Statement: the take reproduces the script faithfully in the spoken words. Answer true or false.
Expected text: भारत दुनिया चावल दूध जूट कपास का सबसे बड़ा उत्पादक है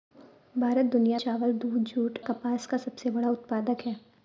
true